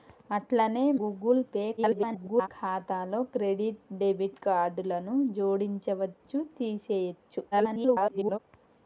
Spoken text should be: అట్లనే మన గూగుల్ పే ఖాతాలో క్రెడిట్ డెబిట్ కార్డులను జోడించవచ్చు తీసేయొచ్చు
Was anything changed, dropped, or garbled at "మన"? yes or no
yes